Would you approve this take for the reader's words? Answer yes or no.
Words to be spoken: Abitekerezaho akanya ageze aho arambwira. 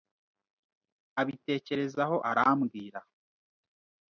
no